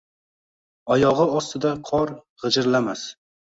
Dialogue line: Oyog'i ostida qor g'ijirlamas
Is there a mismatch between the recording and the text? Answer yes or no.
no